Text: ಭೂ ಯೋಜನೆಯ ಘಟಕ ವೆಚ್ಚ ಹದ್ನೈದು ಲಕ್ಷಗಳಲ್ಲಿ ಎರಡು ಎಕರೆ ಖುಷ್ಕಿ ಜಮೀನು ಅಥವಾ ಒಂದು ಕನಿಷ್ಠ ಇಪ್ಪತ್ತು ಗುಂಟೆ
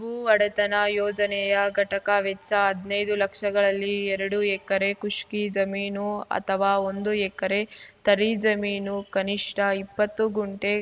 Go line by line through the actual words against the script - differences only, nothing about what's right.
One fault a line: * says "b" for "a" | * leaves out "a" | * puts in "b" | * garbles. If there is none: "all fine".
* puts in "ಒಡೆತನ"
* puts in "ಎಕರೆ ತರಿ ಜಮೀನು"